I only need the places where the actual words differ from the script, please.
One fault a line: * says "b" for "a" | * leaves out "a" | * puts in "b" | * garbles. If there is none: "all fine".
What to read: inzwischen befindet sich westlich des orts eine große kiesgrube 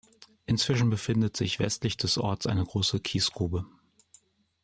all fine